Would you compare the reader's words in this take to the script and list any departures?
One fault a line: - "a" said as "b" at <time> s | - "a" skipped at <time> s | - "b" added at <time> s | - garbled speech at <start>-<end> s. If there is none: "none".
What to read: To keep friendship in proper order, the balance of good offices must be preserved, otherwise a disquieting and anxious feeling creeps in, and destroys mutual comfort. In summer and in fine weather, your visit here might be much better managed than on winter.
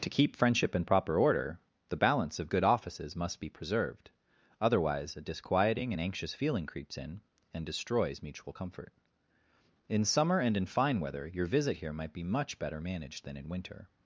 - "on" said as "in" at 13.4 s